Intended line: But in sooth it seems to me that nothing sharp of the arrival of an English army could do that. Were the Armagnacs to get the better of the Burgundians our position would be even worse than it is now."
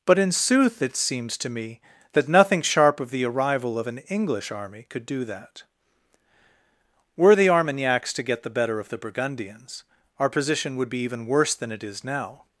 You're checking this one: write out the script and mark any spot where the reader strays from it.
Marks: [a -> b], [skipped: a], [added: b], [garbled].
But in sooth it seems to me that nothing sharp of the arrival of an English army could do that. Were the Armagnacs to get the better of the Burgundians our position would be even worse than it is now."